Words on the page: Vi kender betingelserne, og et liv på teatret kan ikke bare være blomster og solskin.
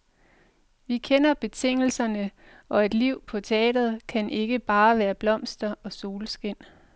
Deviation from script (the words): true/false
false